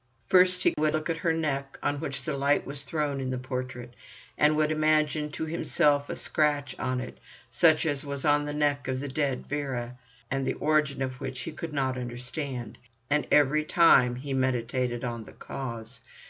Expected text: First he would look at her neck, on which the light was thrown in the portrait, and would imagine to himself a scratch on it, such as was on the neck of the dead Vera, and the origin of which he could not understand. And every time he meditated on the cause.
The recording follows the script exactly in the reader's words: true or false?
true